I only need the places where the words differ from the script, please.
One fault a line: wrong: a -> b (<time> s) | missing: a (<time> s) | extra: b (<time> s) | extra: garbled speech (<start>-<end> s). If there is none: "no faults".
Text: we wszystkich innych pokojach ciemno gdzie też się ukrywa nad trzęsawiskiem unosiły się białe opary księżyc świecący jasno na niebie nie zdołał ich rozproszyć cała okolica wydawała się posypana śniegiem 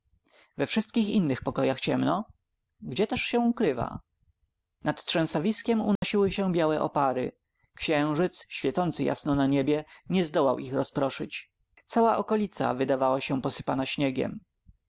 no faults